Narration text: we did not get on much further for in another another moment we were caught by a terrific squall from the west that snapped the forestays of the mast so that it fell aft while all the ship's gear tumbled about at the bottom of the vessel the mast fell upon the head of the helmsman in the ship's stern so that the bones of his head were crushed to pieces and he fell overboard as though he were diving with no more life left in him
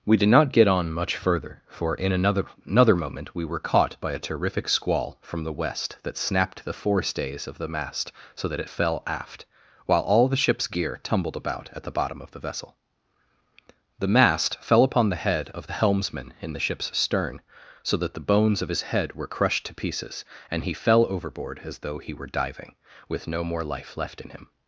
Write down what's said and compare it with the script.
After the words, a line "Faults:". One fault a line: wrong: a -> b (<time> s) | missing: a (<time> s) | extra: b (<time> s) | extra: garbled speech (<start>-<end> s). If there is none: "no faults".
we did not get on much further for in another another moment we were caught by a terrific squall from the west that snapped the forestays of the mast so that it fell aft while all the ship's gear tumbled about at the bottom of the vessel the mast fell upon the head of the helmsman in the ship's stern so that the bones of his head were crushed to pieces and he fell overboard as though he were diving with no more life left in him
Faults:
no faults